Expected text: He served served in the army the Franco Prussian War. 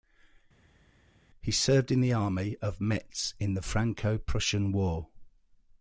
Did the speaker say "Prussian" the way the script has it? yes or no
yes